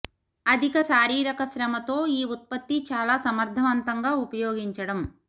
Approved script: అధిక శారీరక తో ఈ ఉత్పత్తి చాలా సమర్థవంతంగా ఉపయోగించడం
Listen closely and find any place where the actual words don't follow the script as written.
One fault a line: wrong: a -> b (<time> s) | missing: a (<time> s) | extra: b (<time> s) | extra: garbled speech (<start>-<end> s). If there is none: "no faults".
extra: శ్రమ (1.4 s)